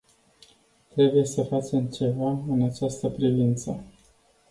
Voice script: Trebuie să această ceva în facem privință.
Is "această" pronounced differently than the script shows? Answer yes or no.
yes